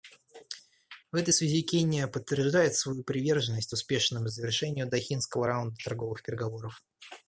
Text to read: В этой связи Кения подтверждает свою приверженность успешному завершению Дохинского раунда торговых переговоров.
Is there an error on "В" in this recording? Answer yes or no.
no